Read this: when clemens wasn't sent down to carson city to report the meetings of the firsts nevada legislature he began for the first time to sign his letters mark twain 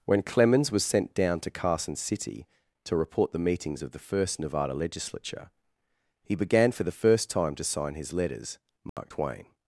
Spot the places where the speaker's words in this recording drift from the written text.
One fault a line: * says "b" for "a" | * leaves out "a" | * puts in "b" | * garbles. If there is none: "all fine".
* says "was" for "wasn't"
* says "first" for "firsts"